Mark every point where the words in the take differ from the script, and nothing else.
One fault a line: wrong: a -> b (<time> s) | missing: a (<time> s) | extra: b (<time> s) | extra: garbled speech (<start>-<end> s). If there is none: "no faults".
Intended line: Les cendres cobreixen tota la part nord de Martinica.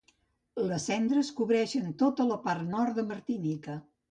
no faults